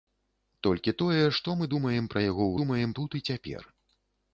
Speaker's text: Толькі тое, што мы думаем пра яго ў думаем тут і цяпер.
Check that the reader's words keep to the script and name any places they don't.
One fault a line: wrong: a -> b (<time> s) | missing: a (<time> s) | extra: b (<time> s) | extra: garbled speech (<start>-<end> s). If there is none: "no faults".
no faults